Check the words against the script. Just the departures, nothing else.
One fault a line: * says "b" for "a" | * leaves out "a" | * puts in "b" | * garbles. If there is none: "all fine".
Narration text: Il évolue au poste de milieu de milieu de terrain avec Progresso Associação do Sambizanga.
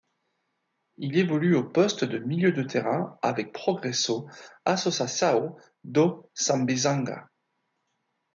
* leaves out "milieu de"